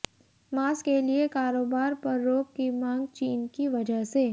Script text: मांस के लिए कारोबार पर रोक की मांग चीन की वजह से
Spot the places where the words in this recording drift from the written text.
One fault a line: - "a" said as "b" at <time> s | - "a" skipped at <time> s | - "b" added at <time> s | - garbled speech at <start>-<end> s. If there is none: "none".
none